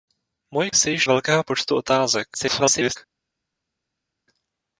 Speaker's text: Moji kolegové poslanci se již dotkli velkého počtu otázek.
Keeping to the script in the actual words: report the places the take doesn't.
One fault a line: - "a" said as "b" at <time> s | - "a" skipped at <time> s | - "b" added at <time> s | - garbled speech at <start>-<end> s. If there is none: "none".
- "kolegové poslanci" skipped at 0.7 s
- "dotkli" skipped at 1.1 s
- garbled speech at 2.3-3.0 s